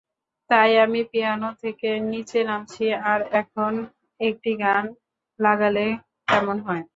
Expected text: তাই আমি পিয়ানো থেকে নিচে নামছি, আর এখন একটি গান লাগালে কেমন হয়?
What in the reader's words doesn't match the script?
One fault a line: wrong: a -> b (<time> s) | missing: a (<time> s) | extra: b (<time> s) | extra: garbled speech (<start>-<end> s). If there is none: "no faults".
no faults